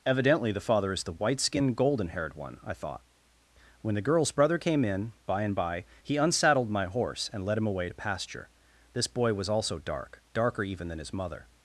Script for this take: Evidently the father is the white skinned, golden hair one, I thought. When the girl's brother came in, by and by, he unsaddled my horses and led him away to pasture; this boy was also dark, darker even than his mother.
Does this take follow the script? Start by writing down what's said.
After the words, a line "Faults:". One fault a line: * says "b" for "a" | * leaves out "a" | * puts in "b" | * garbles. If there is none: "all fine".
Evidently the father is the white skinned, golden haired one, I thought. When the girl's brother came in, by and by, he unsaddled my horse and led him away to pasture; this boy was also dark, darker even than his mother.
Faults:
* says "haired" for "hair"
* says "horse" for "horses"